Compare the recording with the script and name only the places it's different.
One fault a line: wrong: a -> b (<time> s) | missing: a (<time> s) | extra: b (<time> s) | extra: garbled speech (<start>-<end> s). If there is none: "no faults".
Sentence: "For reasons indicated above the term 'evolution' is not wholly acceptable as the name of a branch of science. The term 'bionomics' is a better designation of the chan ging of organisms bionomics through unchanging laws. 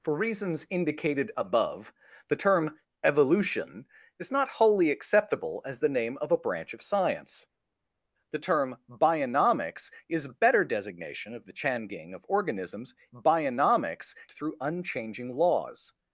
no faults